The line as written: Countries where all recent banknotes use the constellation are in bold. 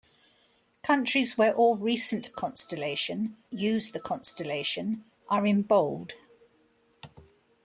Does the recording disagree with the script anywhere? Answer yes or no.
yes